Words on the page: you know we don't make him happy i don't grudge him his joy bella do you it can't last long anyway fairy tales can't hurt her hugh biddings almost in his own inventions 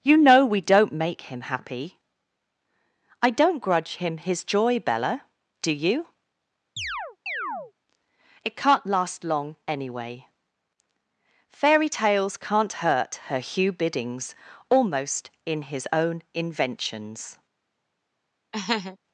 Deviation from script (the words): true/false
false